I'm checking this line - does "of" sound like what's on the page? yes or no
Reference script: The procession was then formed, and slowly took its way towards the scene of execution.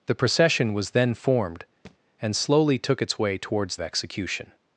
no